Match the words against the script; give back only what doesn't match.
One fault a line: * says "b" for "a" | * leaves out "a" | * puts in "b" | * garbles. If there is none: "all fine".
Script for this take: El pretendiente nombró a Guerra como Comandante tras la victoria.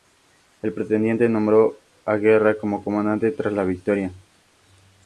all fine